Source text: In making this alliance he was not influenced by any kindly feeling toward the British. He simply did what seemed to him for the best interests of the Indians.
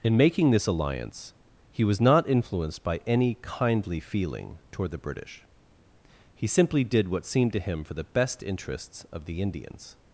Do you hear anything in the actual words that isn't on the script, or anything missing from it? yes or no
no